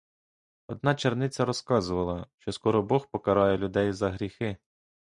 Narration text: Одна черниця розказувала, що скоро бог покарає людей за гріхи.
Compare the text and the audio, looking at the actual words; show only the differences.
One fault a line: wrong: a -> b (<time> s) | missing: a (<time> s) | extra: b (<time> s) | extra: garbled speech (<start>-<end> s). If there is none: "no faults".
no faults